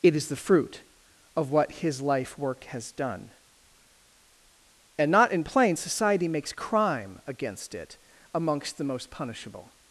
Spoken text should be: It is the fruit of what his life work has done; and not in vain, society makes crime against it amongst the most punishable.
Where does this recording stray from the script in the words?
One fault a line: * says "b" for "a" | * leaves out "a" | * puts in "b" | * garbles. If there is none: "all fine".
* says "plain" for "vain"